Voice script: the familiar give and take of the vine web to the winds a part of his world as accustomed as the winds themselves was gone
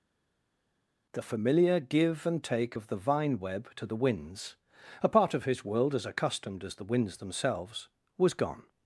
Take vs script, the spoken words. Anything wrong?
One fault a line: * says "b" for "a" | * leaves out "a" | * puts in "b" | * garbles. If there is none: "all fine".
all fine